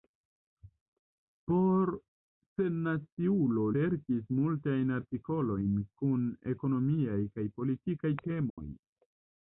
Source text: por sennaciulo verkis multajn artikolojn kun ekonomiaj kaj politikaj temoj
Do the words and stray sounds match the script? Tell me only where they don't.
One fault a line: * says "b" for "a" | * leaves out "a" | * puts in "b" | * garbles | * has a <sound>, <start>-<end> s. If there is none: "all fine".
* has a dropout, 8.5-8.6 s